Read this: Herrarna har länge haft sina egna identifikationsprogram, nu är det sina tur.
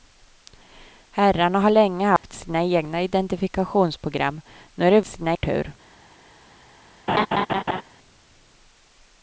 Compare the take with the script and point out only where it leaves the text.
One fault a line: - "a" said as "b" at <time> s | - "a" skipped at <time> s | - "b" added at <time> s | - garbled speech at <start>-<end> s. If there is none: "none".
none